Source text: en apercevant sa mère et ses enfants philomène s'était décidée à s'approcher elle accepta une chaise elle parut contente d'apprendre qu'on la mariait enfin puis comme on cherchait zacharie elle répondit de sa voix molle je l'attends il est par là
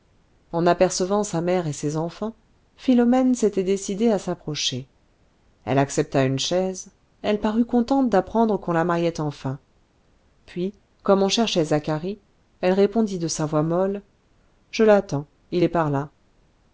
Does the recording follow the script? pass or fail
pass